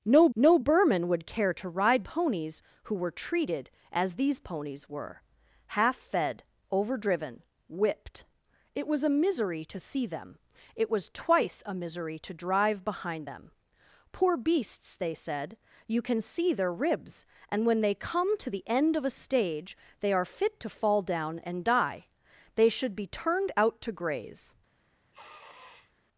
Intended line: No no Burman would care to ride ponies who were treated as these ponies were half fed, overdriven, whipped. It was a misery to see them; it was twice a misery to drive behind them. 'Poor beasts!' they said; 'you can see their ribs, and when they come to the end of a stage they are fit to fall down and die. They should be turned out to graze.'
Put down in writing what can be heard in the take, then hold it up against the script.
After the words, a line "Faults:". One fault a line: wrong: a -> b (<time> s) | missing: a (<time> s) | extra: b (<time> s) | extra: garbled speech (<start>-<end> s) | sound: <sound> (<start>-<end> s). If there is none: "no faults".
No no Burman would care to ride ponies who were treated as these ponies were half fed, overdriven, whipped. It was a misery to see them; it was twice a misery to drive behind them. 'Poor beasts!' they said; 'you can see their ribs, and when they come to the end of a stage they are fit to fall down and die. They should be turned out to graze.'
Faults:
sound: sniff (25.1-25.9 s)